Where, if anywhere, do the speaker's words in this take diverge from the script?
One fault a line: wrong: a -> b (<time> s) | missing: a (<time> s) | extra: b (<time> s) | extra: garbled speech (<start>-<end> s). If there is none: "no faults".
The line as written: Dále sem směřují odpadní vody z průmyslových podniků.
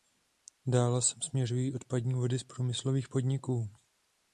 no faults